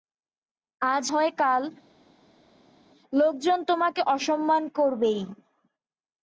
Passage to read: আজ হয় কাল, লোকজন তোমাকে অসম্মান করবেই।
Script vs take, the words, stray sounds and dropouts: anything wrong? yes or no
no